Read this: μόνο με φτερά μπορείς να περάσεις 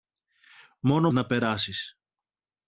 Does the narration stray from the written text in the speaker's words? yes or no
yes